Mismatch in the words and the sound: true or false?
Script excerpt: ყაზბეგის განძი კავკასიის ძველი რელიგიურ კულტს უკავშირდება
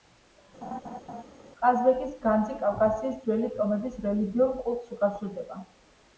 true